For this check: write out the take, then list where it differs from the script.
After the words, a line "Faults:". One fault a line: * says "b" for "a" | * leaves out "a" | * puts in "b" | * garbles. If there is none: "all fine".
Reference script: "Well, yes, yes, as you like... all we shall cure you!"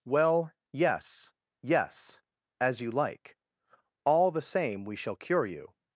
"Well, yes, yes, as you like... all the same we shall cure you!"
Faults:
* puts in "the same"